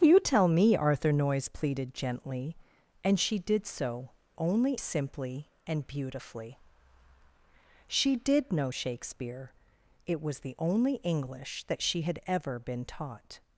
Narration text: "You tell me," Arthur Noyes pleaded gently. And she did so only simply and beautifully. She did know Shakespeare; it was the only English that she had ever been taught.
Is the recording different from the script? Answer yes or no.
no